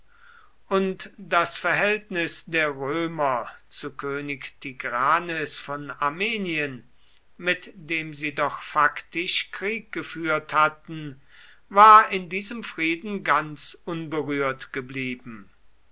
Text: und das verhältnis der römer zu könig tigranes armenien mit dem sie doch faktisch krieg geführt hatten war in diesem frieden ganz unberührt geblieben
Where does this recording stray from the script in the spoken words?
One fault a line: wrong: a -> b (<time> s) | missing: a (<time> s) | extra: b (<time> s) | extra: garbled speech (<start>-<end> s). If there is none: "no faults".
extra: von (5.6 s)